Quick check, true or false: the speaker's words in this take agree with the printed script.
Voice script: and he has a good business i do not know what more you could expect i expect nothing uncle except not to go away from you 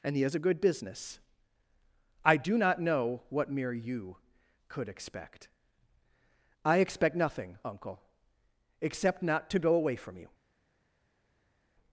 false